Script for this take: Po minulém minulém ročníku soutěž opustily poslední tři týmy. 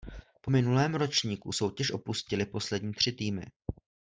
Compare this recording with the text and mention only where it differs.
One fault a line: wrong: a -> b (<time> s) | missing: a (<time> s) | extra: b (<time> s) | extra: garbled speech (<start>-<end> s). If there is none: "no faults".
missing: minulém (0.9 s)